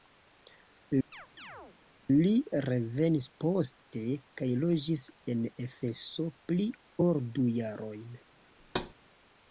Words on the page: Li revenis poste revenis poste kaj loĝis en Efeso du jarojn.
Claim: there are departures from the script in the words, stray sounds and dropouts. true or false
true